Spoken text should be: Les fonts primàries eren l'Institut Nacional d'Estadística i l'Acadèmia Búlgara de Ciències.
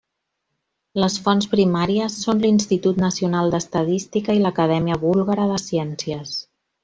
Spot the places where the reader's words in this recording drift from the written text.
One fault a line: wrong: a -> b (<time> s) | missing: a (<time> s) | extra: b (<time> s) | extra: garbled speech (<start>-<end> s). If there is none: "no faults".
wrong: eren -> són (2.2 s)